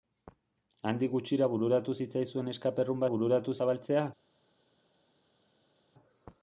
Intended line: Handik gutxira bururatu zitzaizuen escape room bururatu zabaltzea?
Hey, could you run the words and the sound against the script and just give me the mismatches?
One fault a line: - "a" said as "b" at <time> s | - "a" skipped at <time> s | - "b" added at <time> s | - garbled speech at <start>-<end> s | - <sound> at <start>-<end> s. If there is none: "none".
none